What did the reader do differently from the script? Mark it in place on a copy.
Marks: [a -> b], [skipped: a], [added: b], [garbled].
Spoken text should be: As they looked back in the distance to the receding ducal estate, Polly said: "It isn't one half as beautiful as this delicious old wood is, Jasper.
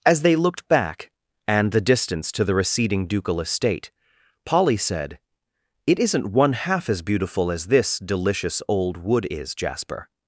As they looked back [in -> and] the distance to the receding ducal estate, Polly said: "It isn't one half as beautiful as this delicious old wood is, Jasper.